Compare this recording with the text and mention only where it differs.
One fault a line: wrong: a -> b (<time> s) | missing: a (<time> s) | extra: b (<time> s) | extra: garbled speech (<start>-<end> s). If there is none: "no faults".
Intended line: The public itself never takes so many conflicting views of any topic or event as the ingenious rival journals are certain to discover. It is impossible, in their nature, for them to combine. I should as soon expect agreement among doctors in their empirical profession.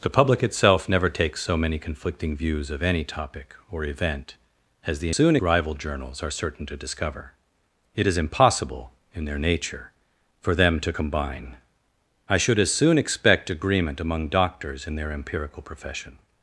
wrong: ingenious -> soon (5.1 s)